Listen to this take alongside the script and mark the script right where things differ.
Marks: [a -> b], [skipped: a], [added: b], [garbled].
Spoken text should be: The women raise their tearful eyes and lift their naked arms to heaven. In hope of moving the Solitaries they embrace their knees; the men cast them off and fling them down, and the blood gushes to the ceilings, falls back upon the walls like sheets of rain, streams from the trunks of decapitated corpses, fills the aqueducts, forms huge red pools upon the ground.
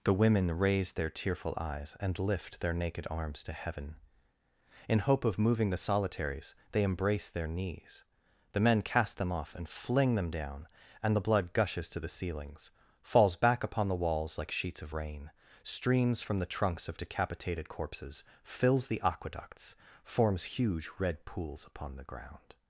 The women raise their tearful eyes and lift their naked arms to heaven. In hope of moving the Solitaries they embrace their knees; the men cast them off and fling them down, and the blood gushes to the ceilings, falls back upon the walls like sheets of rain, streams from the trunks of decapitated corpses, fills the aqueducts, forms huge red pools upon the ground.